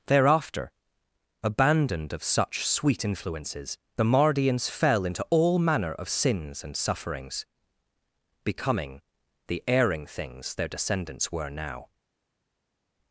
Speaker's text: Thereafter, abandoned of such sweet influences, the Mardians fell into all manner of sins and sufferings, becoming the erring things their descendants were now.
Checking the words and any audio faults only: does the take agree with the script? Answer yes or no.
yes